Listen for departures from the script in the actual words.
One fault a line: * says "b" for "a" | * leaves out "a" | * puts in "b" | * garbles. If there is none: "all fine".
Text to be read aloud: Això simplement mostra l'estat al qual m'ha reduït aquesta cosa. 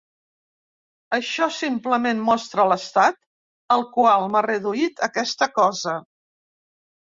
all fine